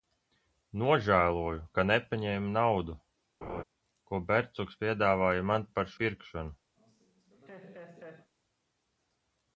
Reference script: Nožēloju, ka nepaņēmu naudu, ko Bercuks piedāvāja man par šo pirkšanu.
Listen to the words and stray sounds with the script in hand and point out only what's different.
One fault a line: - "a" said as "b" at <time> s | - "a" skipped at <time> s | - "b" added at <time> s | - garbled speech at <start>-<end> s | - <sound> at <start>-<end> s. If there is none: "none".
- laugh at 3.4-3.6 s
- "šo" skipped at 5.9 s
- laugh at 6.8-8.3 s